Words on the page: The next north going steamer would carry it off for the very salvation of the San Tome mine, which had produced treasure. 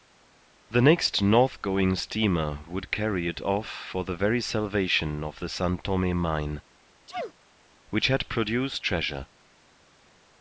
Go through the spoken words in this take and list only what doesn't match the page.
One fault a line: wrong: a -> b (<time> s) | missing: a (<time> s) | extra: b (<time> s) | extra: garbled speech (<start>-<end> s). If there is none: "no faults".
no faults